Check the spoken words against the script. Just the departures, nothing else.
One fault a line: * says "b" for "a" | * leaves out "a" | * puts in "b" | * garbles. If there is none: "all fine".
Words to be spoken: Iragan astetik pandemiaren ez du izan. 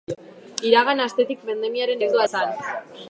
all fine